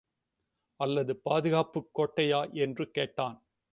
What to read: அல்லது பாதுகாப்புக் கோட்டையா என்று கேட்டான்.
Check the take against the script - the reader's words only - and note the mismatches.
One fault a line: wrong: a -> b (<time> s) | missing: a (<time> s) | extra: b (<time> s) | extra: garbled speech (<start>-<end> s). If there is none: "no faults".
no faults